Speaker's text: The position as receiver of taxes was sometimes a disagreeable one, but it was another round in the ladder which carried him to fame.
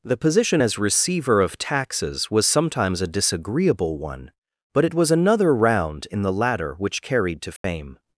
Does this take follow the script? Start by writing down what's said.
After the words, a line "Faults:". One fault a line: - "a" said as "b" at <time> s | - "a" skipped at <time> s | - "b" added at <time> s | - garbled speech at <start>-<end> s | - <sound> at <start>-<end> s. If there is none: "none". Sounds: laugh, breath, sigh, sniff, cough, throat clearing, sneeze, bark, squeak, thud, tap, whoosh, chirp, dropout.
The position as receiver of taxes was sometimes a disagreeable one, but it was another round in the ladder which carried to fame.
Faults:
- "him" skipped at 7.4 s
- dropout at 7.6-7.6 s